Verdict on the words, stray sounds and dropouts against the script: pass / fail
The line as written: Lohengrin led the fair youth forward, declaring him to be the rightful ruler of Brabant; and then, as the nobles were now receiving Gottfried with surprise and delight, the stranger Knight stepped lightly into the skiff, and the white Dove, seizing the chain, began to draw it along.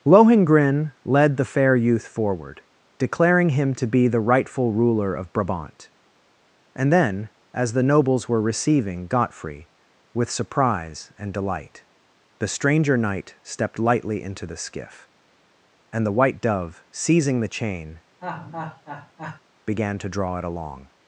fail